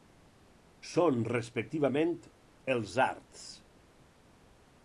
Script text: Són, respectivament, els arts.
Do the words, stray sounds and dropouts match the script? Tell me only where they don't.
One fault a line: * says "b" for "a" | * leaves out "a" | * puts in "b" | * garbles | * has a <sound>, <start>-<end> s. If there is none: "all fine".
all fine